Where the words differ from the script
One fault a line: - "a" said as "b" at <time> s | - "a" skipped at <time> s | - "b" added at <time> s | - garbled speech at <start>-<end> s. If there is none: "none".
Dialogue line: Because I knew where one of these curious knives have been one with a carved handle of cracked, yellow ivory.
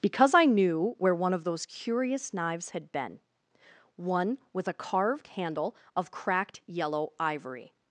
- "these" said as "those" at 1.4 s
- "have" said as "had" at 2.7 s